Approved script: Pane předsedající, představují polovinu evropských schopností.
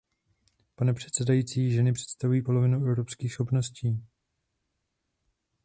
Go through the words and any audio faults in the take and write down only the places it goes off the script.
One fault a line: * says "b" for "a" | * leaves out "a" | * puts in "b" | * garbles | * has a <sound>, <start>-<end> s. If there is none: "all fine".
* puts in "ženy"